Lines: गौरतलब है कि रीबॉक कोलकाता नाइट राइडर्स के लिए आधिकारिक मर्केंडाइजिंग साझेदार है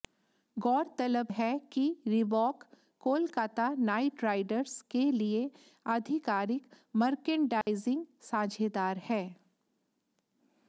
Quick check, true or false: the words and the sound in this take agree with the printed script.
false